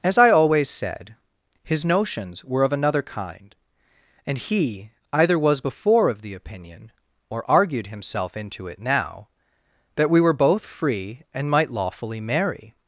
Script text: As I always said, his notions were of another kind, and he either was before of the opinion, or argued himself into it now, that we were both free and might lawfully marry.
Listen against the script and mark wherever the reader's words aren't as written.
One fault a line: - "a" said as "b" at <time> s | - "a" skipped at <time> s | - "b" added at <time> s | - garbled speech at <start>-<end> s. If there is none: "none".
none